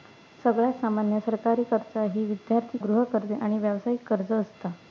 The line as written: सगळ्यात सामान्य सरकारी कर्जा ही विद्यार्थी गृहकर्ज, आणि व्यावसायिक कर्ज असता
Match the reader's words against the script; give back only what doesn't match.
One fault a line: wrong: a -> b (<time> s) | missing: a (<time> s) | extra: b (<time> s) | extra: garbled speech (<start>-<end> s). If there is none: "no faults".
no faults